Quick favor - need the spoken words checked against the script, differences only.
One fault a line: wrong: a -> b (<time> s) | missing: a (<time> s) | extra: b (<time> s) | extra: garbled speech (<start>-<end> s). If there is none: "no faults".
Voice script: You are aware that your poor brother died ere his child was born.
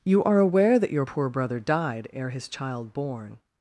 missing: was (2.9 s)